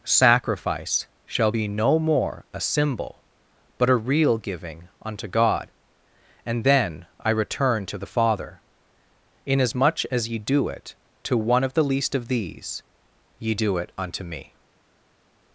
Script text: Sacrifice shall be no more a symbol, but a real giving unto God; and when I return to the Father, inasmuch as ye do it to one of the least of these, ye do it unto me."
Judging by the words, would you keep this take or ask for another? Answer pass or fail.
fail